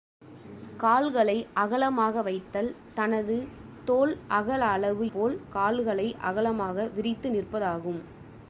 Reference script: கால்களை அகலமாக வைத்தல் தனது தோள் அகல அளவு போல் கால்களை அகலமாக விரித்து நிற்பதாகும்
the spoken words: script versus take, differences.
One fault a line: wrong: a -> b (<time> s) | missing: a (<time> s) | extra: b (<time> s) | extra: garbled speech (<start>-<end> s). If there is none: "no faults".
no faults